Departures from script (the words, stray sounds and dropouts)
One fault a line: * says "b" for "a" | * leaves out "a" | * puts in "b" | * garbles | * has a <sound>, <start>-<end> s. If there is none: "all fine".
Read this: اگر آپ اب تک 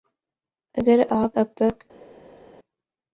all fine